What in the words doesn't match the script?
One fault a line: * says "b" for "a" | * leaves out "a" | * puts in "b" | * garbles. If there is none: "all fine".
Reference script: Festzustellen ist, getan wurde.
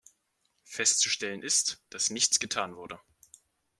* puts in "dass nichts"